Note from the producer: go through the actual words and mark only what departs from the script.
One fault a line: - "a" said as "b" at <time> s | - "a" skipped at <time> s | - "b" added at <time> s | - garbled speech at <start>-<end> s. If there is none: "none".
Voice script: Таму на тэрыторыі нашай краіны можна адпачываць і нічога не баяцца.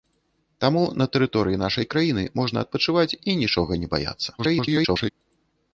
- garbled speech at 4.4-5.1 s